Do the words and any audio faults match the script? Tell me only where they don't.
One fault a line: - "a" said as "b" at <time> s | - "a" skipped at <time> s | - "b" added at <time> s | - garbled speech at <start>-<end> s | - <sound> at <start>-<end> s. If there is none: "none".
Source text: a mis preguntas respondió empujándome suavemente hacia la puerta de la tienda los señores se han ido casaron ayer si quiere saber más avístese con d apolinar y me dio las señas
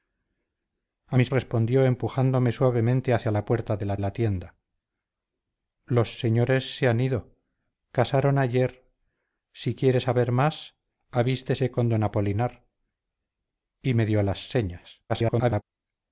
- "preguntas" skipped at 1.3 s
- "la" added at 4.0 s
- garbled speech at 15.1-15.6 s